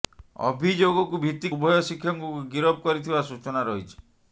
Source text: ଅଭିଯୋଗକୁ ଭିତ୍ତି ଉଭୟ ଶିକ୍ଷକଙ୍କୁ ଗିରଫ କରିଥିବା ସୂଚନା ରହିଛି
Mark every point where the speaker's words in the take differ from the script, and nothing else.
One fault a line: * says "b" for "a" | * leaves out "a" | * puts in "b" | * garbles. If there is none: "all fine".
all fine